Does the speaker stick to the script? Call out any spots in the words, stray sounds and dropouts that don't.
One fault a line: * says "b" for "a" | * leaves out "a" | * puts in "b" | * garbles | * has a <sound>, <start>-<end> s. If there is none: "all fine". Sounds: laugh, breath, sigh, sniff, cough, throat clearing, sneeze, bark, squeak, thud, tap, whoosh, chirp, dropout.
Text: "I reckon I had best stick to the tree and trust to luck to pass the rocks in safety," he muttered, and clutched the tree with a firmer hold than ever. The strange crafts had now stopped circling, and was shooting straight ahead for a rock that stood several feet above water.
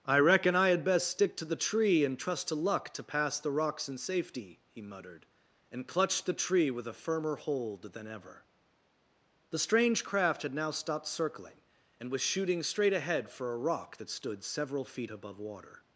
* says "craft" for "crafts"